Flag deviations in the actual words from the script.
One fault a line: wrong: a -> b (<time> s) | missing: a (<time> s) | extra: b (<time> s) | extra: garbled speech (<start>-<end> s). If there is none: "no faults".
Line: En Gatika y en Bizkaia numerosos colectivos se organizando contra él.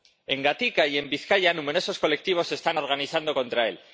extra: están (2.5 s)